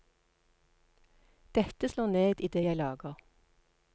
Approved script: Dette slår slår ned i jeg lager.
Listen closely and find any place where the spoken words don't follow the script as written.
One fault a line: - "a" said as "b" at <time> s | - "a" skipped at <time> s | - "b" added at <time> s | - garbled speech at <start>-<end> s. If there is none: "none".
- "slår" skipped at 2.1 s
- "det" added at 2.5 s